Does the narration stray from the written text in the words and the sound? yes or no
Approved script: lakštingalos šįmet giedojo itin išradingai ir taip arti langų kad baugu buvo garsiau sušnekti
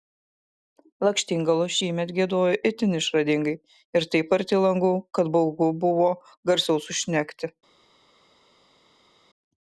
no